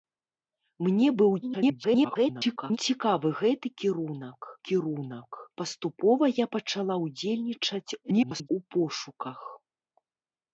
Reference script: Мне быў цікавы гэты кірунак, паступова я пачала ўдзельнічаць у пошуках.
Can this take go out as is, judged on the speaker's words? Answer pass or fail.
fail